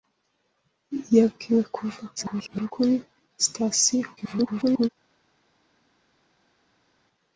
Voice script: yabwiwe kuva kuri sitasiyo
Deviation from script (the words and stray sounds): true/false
true